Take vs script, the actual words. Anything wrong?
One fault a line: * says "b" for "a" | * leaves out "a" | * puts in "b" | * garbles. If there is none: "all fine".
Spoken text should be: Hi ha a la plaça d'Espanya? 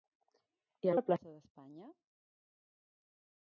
all fine